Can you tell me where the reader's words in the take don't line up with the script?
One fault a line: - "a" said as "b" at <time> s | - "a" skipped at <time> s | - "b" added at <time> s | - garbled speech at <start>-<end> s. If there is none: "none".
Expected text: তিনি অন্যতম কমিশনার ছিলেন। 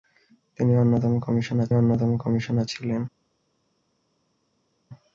- "অন্যতম কমিশনার" added at 1.7 s